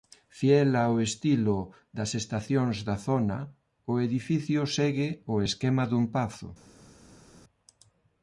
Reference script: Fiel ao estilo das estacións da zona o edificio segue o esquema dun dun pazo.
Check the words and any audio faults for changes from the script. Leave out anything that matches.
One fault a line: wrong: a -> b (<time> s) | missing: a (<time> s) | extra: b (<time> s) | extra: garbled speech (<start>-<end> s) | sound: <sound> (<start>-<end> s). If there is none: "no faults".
missing: dun (6.0 s)